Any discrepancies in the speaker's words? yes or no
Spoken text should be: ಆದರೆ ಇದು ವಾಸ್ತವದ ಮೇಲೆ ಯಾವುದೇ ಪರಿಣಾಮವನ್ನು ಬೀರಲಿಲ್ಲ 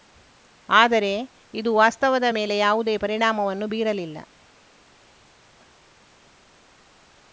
no